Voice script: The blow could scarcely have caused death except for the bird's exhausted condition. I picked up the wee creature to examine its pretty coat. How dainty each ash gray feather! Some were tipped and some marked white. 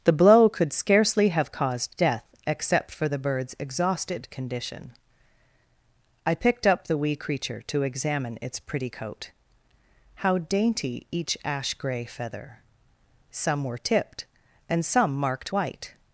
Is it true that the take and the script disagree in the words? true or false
false